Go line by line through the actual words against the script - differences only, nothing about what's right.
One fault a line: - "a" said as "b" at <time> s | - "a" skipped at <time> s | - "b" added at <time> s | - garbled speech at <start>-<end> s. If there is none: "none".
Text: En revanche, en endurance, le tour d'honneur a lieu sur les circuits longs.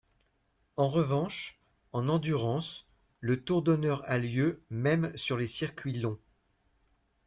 - "même" added at 4.7 s